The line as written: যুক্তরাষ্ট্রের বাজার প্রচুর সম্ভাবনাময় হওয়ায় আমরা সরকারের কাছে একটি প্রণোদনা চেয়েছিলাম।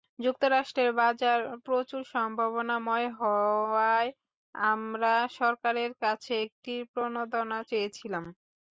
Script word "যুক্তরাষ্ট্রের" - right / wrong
right